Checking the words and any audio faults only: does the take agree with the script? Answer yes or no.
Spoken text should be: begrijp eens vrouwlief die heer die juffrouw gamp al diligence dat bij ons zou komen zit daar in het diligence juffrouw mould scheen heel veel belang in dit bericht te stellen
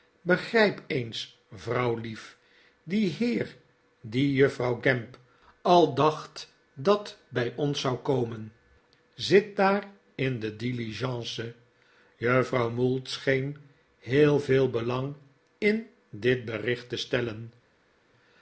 no